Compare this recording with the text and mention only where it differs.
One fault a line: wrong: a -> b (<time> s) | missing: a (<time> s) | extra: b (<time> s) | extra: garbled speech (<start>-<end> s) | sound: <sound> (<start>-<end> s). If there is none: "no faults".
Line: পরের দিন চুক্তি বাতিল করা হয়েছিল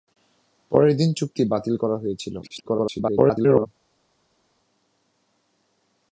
extra: garbled speech (2.4-3.7 s)